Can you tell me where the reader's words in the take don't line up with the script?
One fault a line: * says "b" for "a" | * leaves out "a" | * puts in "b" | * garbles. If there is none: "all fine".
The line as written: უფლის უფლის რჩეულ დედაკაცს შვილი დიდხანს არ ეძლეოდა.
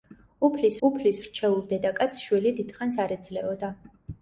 all fine